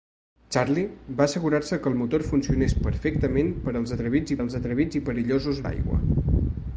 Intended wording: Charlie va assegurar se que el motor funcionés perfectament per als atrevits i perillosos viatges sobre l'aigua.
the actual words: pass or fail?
fail